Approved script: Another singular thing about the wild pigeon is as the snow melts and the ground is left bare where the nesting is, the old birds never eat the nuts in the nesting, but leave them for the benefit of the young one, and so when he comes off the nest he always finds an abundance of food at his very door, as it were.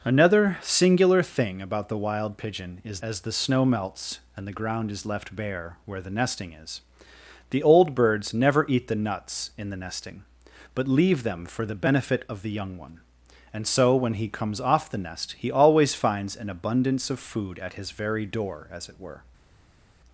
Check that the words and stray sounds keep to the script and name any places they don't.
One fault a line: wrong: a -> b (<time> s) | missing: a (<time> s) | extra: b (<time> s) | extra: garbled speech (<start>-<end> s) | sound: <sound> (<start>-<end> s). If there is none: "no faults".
no faults